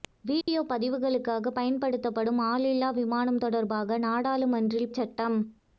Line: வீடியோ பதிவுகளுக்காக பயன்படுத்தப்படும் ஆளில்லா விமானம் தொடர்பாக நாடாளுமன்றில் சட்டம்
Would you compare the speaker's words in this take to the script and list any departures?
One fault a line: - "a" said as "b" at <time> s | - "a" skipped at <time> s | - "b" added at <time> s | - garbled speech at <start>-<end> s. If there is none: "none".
none